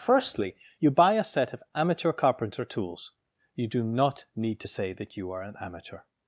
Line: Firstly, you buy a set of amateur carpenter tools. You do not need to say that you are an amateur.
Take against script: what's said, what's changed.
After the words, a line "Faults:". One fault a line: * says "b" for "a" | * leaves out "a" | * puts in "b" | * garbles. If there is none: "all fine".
Firstly, you buy a set of amateur carpenter tools. You do not need to say that you are an amateur.
Faults:
all fine